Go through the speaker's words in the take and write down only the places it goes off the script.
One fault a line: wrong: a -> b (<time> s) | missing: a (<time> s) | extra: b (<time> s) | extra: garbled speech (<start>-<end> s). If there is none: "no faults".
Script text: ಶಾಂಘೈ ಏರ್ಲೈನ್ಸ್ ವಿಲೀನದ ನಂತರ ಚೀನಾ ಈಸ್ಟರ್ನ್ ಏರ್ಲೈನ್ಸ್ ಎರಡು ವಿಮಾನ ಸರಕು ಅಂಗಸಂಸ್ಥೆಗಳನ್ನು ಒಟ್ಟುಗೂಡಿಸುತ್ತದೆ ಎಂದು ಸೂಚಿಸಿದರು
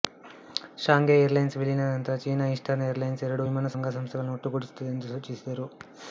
missing: ಸರಕು (3.7 s)